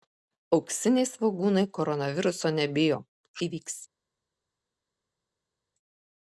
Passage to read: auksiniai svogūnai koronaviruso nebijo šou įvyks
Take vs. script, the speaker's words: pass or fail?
fail